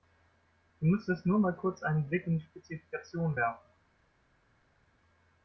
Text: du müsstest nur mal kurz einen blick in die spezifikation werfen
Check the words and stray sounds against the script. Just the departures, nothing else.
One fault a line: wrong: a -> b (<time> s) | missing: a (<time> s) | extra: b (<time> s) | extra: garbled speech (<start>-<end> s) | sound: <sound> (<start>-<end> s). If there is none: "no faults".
no faults